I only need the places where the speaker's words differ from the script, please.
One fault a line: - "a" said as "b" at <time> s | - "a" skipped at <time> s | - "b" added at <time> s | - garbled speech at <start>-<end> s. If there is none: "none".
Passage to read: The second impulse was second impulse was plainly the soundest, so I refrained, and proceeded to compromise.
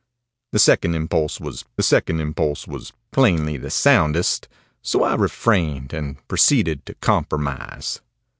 none